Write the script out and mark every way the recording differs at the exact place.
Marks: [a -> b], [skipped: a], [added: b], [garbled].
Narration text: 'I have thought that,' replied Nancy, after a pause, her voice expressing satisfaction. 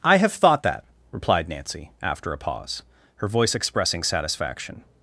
'I have thought that,' replied Nancy, after a pause, her voice expressing satisfaction.